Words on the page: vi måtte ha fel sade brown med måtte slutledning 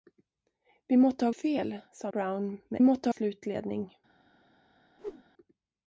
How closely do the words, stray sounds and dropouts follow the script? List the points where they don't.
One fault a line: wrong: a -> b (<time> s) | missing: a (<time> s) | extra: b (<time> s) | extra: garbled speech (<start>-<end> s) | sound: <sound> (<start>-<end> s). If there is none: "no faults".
sound: whoosh (5.0-5.2 s)